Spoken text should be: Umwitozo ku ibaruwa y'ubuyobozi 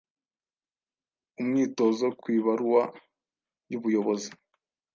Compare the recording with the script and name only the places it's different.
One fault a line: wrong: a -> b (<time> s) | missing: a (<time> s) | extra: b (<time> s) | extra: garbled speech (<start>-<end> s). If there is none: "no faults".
no faults